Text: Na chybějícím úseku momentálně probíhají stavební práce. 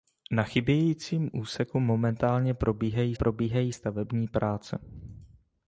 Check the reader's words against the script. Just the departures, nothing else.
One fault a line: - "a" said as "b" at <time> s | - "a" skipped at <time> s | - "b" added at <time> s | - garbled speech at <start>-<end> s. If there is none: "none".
- "probíhají" added at 3.1 s